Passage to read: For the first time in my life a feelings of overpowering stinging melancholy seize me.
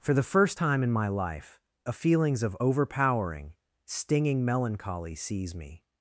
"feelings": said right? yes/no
yes